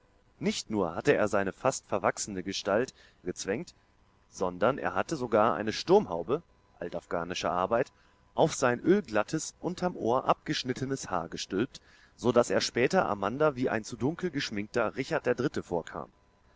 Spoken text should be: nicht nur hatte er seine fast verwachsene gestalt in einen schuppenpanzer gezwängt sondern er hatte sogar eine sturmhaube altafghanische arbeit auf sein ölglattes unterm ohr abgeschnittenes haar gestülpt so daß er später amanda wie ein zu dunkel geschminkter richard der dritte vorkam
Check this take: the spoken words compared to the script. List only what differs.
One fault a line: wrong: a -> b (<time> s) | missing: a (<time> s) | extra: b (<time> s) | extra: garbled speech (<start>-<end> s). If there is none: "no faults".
missing: in einen schuppenpanzer (3.0 s)